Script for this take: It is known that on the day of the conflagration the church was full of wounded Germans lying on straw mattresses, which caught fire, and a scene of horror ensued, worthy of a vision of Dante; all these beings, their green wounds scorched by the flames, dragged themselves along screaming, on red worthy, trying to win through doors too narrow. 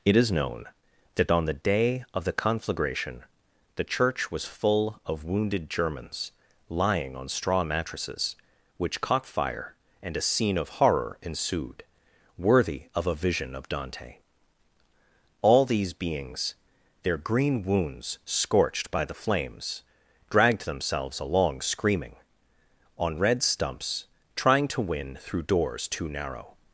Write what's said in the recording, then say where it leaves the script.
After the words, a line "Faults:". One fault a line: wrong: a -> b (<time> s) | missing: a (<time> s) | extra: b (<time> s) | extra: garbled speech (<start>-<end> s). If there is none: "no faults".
It is known that on the day of the conflagration the church was full of wounded Germans lying on straw mattresses, which caught fire, and a scene of horror ensued, worthy of a vision of Dante; all these beings, their green wounds scorched by the flames, dragged themselves along screaming, on red stumps, trying to win through doors too narrow.
Faults:
wrong: worthy -> stumps (23.4 s)